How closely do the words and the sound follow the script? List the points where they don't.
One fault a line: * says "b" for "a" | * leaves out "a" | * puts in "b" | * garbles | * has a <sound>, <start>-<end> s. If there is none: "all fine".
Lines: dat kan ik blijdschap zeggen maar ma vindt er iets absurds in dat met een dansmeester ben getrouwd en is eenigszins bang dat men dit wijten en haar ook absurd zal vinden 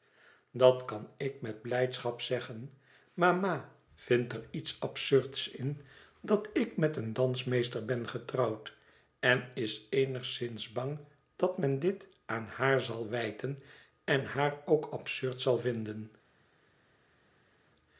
* puts in "met"
* puts in "ik"
* puts in "aan haar zal"